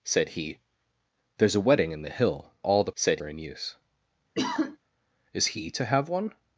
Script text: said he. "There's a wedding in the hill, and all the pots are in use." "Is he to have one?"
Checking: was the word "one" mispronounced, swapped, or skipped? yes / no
no